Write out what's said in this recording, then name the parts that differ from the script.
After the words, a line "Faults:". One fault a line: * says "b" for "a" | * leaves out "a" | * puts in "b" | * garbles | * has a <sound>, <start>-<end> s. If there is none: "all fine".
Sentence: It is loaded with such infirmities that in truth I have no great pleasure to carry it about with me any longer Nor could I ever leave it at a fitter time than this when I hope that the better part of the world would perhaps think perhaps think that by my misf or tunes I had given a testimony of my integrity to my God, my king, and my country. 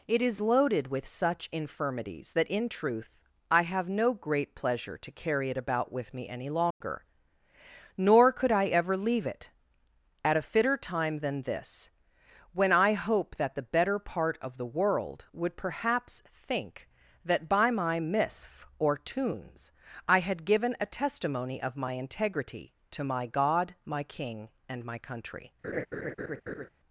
It is loaded with such infirmities that in truth I have no great pleasure to carry it about with me any longer Nor could I ever leave it at a fitter time than this when I hope that the better part of the world would perhaps think that by my misf or tunes I had given a testimony of my integrity to my God, my king, and my country.
Faults:
* has a dropout, 6.7-6.8 s
* leaves out "perhaps think"
* has a laugh, 25.6-26.7 s